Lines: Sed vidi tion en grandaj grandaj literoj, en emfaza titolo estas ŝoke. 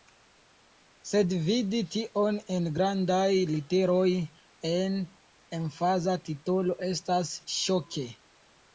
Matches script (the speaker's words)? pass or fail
fail